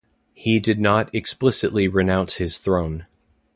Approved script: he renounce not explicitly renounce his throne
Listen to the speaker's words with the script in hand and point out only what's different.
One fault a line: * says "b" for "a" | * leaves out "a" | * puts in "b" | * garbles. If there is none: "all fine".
* says "did" for "renounce"